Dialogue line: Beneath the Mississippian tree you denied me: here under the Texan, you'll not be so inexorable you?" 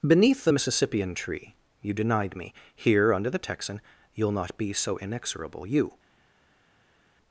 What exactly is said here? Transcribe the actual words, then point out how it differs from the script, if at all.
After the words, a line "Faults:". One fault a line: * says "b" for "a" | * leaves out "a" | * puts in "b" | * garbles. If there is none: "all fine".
Beneath the Mississippian tree you denied me: here under the Texan, you'll not be so inexorable you?"
Faults:
all fine